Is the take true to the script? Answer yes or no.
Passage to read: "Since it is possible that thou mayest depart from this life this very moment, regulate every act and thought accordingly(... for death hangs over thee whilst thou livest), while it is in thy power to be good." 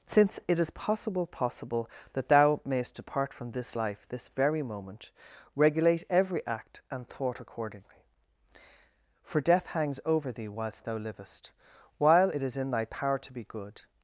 no